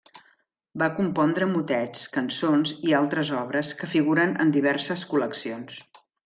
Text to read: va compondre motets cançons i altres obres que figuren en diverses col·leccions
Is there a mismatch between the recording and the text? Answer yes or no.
no